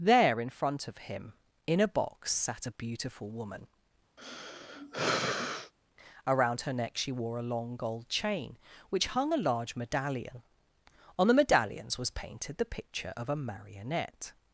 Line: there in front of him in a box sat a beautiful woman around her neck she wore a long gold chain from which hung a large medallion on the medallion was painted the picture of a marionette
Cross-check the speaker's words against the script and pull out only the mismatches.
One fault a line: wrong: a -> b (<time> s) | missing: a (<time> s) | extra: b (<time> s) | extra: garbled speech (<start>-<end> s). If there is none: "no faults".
missing: from (8.6 s)
wrong: medallion -> medallions (11.3 s)